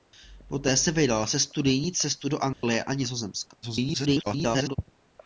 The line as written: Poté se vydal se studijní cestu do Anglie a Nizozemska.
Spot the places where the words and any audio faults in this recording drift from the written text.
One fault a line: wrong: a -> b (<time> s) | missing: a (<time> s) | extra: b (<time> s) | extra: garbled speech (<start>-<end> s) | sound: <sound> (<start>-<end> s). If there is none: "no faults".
sound: dropout (2.5-2.6 s)
extra: garbled speech (3.6-4.8 s)